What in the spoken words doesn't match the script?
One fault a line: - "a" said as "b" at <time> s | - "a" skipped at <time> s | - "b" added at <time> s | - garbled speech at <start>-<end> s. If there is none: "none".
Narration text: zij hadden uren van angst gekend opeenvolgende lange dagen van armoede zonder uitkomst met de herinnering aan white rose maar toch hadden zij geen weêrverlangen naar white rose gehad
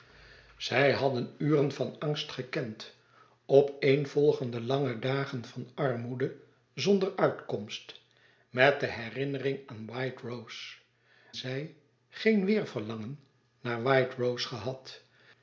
- "maar toch hadden" skipped at 10.8 s